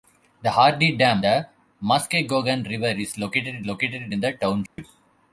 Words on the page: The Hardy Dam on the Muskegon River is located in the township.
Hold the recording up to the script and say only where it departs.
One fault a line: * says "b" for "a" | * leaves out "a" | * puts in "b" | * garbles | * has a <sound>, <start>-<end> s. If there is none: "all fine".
* leaves out "on"
* puts in "located"
* has a dropout, 4.7-4.8 s